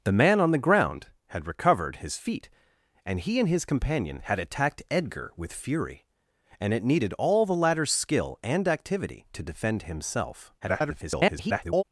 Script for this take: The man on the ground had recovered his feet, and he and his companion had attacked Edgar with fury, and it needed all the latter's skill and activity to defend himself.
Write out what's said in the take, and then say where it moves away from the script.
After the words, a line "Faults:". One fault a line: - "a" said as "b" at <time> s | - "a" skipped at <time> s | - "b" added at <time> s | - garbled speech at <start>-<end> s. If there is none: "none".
The man on the ground had recovered his feet, and he and his companion had attacked Edgar with fury, and it needed all the latter's skill and activity to defend himself. [garbled]
Faults:
- garbled speech at 10.6-11.8 s